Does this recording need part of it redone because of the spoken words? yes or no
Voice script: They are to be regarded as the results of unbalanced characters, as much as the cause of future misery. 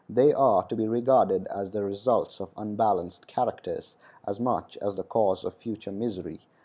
no